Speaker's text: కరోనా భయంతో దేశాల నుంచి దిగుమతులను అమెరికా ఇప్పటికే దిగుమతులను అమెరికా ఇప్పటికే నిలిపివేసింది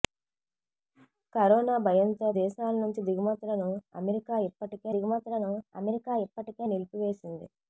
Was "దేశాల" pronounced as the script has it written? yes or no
yes